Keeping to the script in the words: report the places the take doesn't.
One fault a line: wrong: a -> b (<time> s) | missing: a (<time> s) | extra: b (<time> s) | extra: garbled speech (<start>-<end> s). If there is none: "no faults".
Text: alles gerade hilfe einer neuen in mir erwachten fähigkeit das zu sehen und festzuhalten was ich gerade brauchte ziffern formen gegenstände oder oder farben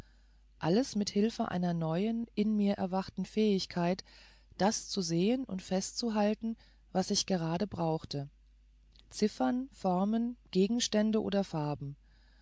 wrong: gerade -> mit (0.9 s)
missing: oder (11.4 s)